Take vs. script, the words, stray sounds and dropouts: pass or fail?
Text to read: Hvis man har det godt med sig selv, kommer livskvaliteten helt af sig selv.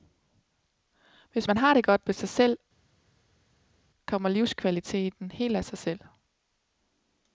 pass